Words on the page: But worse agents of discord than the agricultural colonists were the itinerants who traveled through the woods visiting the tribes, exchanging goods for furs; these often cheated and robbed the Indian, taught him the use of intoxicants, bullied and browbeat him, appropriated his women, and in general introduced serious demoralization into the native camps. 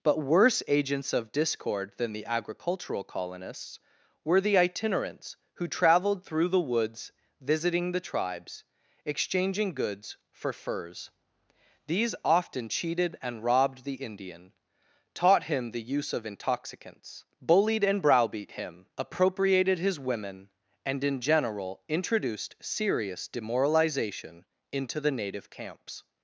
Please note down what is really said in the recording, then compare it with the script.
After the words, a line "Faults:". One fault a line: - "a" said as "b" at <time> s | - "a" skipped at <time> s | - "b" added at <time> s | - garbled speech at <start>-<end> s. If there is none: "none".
But worse agents of discord than the agricultural colonists were the itinerants who traveled through the woods visiting the tribes, exchanging goods for furs; these often cheated and robbed the Indian, taught him the use of intoxicants, bullied and browbeat him, appropriated his women, and in general introduced serious demoralization into the native camps.
Faults:
none